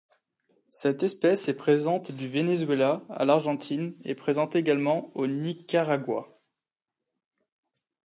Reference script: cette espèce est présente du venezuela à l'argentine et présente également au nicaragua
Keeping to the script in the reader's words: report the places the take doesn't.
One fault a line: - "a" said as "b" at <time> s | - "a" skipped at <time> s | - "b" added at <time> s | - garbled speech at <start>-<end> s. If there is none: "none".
none